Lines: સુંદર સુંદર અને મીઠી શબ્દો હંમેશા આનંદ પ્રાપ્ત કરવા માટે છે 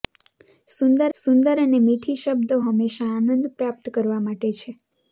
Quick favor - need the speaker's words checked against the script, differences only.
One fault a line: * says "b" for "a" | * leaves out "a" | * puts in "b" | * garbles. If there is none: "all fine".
all fine